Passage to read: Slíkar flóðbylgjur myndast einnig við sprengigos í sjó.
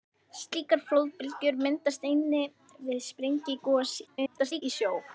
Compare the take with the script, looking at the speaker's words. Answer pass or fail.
fail